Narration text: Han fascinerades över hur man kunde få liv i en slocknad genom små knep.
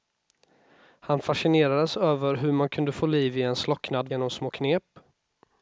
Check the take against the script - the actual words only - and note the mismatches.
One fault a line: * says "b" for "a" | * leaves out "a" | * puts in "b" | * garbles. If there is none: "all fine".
all fine